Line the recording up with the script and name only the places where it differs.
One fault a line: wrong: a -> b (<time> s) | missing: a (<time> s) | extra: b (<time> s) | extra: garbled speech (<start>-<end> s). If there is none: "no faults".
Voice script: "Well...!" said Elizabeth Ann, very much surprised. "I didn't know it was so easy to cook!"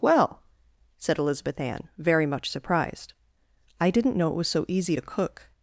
no faults